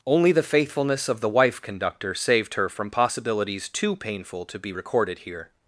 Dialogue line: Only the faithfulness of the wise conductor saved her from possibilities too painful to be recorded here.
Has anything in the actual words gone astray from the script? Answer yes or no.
yes